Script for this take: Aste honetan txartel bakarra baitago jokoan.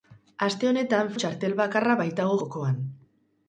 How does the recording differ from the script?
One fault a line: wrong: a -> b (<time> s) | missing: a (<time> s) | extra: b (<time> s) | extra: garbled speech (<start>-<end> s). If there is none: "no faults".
no faults